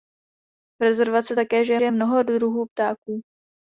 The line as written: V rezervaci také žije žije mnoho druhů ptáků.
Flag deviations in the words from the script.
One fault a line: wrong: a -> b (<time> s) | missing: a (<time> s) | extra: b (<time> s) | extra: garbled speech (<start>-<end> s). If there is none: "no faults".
no faults